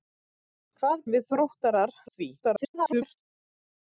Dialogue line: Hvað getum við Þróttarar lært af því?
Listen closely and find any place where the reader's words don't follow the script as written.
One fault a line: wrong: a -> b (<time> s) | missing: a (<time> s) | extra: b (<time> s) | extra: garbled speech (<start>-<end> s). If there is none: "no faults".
missing: getum (1.0 s)
missing: lært (2.0 s)
extra: garbled speech (2.4-3.2 s)